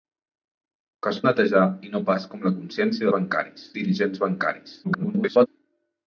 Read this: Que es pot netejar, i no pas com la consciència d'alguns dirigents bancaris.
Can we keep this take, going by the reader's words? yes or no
no